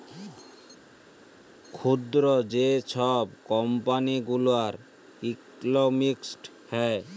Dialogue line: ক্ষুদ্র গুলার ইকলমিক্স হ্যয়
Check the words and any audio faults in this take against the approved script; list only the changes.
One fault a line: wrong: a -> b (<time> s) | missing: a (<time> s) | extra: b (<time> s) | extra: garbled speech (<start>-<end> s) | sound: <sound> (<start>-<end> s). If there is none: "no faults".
extra: যে ছব কম্পালি (2.5 s)